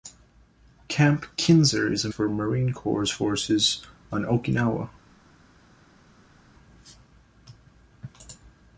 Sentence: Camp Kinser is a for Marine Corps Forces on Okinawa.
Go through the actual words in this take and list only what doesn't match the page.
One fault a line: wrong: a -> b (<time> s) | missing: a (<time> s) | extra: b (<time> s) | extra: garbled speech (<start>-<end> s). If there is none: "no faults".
no faults